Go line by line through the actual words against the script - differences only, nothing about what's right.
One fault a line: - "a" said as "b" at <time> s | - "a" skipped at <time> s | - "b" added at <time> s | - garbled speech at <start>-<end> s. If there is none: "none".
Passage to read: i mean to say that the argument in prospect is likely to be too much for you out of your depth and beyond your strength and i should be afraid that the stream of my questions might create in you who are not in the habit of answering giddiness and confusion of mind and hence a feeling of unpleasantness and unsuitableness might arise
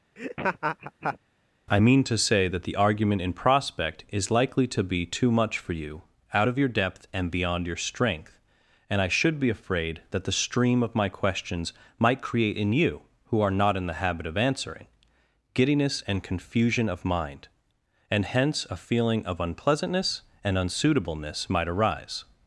none